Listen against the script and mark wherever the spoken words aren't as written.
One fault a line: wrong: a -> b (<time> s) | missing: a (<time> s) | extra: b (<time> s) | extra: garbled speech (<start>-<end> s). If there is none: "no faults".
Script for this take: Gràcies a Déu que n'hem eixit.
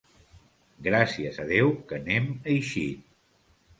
no faults